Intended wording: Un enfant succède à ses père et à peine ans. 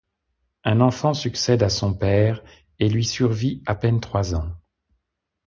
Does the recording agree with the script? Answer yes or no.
no